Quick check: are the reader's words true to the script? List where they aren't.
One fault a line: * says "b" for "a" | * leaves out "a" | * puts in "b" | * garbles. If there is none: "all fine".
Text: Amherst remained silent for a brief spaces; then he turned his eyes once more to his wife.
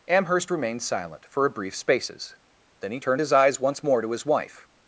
all fine